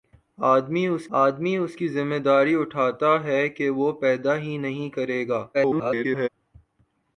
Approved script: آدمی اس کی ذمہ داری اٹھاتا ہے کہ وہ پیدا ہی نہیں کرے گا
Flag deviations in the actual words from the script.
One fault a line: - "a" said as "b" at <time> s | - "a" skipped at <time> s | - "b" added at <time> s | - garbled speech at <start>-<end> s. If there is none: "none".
- "آدمی اس" added at 1.2 s
- garbled speech at 5.5-6.3 s